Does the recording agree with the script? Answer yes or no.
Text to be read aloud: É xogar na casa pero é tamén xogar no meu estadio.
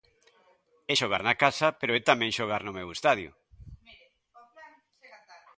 yes